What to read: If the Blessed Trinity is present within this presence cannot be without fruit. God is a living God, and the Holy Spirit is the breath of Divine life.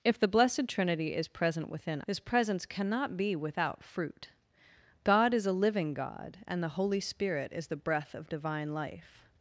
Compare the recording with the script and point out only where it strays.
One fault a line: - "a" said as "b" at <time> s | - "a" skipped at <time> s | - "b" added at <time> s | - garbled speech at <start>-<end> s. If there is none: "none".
none